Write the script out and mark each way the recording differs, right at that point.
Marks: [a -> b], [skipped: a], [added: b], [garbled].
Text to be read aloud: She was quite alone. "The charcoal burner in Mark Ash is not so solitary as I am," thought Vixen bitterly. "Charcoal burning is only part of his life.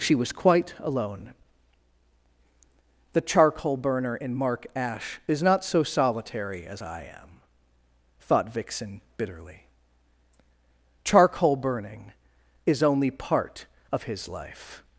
She was quite alone. "The charcoal burner in Mark Ash is not so solitary as I am," thought Vixen bitterly. "Charcoal burning is only part of his life.